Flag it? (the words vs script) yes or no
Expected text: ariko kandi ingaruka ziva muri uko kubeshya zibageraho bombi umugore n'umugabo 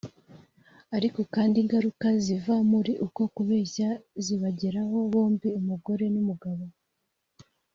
no